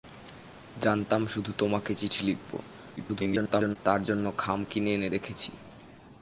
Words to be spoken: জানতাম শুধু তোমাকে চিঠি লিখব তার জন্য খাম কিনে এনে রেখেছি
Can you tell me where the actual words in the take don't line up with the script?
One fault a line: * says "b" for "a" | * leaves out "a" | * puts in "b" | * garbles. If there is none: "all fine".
* garbles